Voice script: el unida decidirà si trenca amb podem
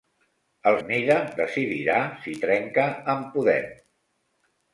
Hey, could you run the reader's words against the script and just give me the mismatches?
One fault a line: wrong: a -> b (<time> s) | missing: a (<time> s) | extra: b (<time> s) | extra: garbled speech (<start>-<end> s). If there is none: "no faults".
no faults